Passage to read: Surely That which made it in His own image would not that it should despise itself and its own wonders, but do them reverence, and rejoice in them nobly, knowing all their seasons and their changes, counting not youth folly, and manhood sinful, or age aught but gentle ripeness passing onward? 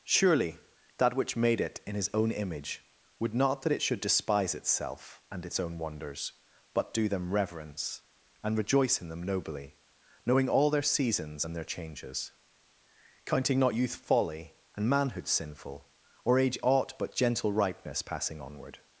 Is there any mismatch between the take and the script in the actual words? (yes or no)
no